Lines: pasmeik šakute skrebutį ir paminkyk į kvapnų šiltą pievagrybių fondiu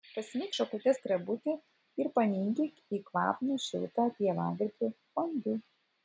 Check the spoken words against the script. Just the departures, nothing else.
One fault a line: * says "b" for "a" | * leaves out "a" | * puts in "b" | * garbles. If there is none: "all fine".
all fine